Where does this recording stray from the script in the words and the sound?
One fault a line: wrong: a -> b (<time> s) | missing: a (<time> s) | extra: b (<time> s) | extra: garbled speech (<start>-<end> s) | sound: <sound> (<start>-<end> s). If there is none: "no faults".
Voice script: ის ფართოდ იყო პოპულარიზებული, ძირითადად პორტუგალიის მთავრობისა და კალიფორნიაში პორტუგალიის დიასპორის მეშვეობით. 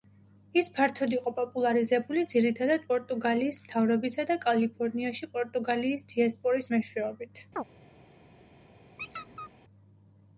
sound: chirp (7.6-7.6 s)
sound: squeak (9.0-9.5 s)